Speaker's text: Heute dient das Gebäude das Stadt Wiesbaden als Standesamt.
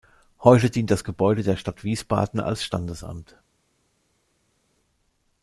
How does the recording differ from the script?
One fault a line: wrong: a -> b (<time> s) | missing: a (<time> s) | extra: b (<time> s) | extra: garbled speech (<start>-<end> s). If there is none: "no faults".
wrong: das -> der (1.4 s)